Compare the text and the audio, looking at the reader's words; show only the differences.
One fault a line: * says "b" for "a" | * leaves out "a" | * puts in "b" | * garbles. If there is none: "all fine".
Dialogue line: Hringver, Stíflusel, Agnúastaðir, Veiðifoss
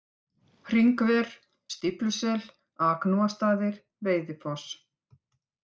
all fine